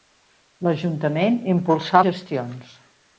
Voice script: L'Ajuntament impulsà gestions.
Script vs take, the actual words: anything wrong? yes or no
no